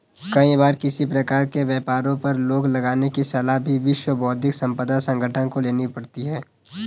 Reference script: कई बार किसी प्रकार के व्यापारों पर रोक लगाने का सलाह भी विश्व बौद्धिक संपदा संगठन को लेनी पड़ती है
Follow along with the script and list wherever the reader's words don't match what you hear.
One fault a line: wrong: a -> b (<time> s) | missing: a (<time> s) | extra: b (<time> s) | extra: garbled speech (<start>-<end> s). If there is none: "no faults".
wrong: का -> की (3.1 s)